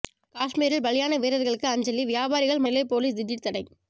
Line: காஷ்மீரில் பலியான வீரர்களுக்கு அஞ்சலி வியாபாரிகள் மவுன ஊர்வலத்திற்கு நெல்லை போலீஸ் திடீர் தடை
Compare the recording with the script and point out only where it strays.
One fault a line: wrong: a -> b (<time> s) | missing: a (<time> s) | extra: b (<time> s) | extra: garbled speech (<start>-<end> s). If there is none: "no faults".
missing: மவுன ஊர்வலத்திற்கு (2.6 s)